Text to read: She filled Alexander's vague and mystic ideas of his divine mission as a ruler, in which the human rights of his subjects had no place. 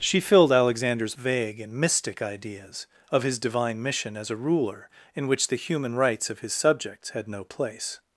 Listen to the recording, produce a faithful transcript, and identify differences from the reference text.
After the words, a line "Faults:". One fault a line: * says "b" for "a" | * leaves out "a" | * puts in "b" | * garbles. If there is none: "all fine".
She filled Alexander's vague and mystic ideas of his divine mission as a ruler, in which the human rights of his subjects had no place.
Faults:
all fine